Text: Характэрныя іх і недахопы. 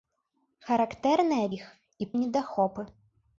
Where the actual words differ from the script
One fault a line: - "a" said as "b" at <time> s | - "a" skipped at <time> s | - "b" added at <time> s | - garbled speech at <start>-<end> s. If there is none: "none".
none